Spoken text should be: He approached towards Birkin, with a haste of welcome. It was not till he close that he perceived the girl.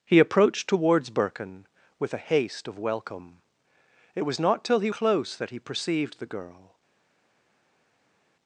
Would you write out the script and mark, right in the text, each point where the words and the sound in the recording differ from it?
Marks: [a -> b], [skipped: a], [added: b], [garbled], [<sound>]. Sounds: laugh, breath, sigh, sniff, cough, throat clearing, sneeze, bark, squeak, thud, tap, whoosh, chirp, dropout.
He approached towards Birkin, with a haste of welcome. It was not till he close that he perceived the girl.